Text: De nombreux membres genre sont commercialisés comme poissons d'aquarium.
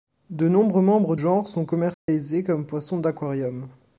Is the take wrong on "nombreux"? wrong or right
right